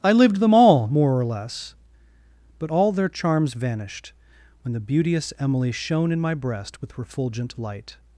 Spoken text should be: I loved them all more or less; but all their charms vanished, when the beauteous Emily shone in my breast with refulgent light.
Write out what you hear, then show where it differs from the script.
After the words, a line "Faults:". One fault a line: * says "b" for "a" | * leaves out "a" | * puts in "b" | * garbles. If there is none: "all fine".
I lived them all more or less; but all their charms vanished, when the beauteous Emily shone in my breast with refulgent light.
Faults:
* says "lived" for "loved"